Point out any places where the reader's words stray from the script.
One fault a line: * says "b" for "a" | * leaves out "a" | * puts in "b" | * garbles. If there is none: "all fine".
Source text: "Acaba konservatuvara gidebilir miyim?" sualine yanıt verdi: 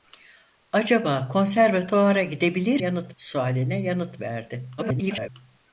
* says "yanıt" for "miyim"
* garbles